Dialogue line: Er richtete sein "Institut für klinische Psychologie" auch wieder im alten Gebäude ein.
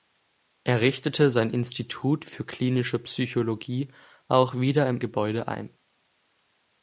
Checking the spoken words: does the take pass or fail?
fail